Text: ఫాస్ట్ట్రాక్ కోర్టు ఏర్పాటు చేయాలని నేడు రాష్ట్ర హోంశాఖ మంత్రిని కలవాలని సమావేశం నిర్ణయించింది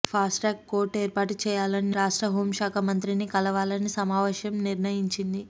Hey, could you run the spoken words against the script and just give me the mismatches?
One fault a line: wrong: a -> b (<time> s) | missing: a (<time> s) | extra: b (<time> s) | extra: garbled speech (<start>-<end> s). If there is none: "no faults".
missing: నేడు (1.9 s)